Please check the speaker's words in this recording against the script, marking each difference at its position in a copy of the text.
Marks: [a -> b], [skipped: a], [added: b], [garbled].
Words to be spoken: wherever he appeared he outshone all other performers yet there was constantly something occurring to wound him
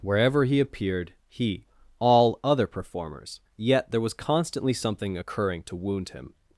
wherever he appeared he [skipped: outshone] all other performers yet there was constantly something occurring to wound him